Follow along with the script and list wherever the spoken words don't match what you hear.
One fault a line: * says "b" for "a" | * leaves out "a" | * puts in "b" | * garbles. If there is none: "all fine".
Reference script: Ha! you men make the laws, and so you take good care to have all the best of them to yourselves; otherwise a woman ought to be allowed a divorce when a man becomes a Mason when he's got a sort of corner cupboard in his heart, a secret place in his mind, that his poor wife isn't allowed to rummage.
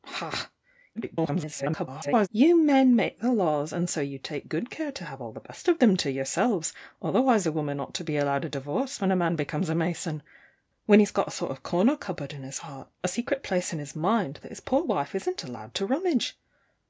* garbles